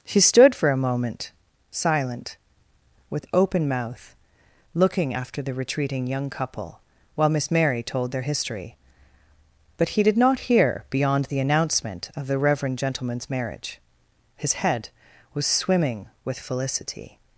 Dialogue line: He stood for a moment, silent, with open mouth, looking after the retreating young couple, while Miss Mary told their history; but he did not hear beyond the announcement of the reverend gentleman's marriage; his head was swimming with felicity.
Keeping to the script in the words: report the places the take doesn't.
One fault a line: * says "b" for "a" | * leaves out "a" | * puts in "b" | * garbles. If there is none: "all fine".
* says "She" for "He"